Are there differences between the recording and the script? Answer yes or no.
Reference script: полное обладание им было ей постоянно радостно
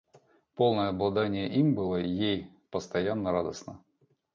no